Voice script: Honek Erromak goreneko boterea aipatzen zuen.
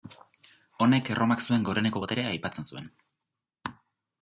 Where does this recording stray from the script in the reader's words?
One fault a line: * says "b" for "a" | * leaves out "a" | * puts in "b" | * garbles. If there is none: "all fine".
* puts in "zuen"